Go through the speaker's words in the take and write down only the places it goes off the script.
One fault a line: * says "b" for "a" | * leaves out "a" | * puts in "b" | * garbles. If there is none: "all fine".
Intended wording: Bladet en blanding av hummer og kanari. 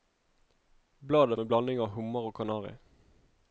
all fine